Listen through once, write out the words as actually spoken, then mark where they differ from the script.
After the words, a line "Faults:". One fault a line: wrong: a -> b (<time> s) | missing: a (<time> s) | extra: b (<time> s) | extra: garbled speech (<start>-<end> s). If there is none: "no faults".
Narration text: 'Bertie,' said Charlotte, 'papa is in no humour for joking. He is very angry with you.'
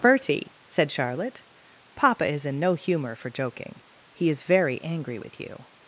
'Bertie,' said Charlotte, 'papa is in no humour for joking. He is very angry with you.'
Faults:
no faults